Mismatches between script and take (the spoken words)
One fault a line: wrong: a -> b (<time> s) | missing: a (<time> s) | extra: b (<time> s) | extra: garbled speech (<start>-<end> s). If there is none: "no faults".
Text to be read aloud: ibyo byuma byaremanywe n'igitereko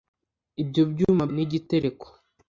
missing: byaremanywe (1.2 s)